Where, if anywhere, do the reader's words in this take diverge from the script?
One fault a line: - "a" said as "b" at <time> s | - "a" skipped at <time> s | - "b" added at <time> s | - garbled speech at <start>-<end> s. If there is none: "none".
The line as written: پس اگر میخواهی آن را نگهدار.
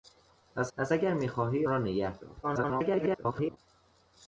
- "پس" added at 0.8 s
- "آن" skipped at 1.7 s
- garbled speech at 2.4-3.6 s